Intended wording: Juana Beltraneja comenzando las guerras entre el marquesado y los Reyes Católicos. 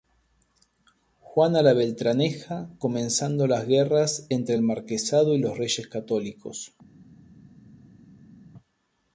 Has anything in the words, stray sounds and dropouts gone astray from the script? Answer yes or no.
yes